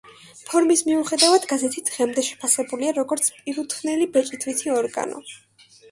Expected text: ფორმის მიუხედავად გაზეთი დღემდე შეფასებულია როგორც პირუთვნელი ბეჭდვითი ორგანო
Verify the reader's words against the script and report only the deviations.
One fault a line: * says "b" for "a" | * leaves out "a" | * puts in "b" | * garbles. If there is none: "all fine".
all fine